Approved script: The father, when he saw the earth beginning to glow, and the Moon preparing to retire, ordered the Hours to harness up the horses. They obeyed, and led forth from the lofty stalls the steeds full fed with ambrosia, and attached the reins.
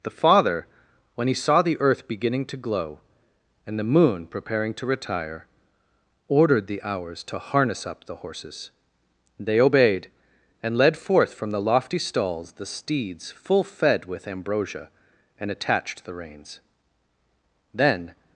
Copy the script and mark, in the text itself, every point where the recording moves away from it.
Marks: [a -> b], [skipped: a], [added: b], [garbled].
The father, when he saw the earth beginning to glow, and the Moon preparing to retire, ordered the Hours to harness up the horses. They obeyed, and led forth from the lofty stalls the steeds full fed with ambrosia, and attached the reins. [added: Then]